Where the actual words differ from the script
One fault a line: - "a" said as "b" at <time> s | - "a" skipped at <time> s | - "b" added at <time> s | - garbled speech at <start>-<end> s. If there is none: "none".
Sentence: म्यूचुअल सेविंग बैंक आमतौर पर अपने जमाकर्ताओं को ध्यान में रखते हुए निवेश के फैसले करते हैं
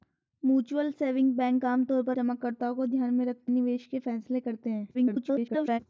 - "अपने" skipped at 2.2 s
- "हुए" skipped at 3.5 s
- garbled speech at 4.9-5.8 s